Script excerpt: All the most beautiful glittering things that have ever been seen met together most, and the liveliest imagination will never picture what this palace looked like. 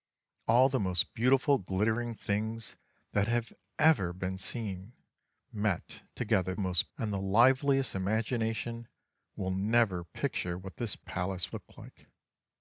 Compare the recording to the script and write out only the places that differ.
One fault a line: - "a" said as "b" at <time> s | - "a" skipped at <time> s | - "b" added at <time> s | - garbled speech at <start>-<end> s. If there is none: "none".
none